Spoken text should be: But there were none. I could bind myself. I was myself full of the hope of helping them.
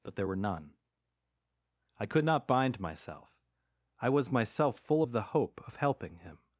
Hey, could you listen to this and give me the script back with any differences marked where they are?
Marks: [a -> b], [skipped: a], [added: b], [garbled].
But there were none. I could [added: not] bind myself. I was myself full of the hope of helping [them. -> him]